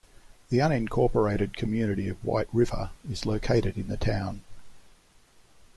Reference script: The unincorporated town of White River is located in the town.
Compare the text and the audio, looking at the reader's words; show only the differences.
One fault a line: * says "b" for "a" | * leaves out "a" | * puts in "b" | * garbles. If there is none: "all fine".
* says "community" for "town"